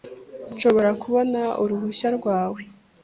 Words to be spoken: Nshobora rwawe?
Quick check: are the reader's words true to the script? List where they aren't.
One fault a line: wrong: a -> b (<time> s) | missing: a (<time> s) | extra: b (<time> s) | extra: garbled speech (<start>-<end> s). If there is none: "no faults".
extra: kubona uruhushya (1.0 s)